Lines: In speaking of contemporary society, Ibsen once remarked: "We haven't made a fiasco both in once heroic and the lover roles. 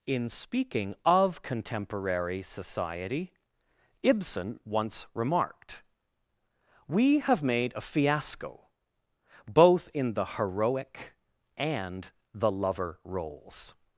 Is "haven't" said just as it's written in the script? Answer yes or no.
no